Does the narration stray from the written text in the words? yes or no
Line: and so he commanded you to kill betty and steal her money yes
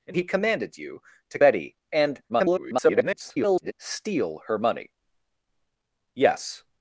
yes